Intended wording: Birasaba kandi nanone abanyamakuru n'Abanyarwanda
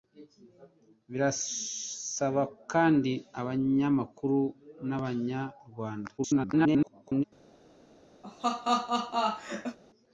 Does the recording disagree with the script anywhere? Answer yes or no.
yes